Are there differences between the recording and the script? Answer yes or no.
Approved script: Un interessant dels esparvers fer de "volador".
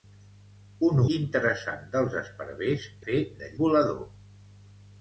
no